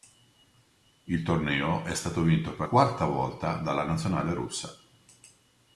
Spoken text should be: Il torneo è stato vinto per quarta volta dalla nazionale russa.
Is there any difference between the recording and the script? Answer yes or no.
no